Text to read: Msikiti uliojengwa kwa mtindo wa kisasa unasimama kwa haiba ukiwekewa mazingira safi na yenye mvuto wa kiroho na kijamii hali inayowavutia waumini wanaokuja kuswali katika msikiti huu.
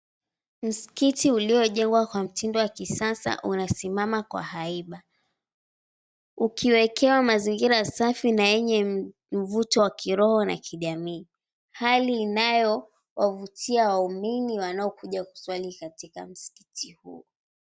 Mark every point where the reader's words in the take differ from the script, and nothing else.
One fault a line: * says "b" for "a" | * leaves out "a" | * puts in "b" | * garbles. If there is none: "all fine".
all fine